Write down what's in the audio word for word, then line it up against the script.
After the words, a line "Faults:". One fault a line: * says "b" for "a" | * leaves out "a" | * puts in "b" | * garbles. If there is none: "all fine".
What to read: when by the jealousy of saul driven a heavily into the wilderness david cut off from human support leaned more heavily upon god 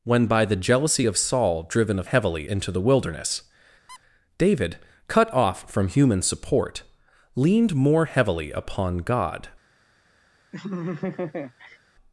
when by the jealousy of saul driven a heavily into the wilderness david cut off from human support leaned more heavily upon god
Faults:
all fine